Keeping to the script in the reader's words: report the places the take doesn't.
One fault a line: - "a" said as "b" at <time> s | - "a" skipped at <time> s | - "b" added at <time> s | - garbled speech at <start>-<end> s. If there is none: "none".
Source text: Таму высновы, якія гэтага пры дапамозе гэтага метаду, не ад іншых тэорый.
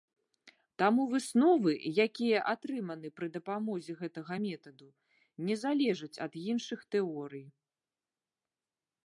- "гэтага" said as "атрыманы" at 2.5 s
- "залежаць" added at 5.6 s